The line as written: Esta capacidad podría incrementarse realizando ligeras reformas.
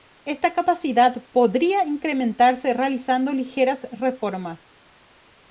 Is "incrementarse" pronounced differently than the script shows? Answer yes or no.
no